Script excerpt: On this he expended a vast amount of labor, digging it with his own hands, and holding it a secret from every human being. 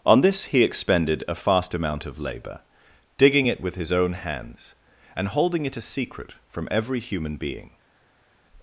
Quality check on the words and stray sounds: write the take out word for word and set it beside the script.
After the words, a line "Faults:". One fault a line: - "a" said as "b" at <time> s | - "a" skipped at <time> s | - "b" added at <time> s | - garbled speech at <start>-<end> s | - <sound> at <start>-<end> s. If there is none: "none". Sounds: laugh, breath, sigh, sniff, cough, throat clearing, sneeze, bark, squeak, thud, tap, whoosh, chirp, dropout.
On this he expended a fast amount of labor, digging it with his own hands, and holding it a secret from every human being.
Faults:
- "vast" said as "fast" at 1.4 s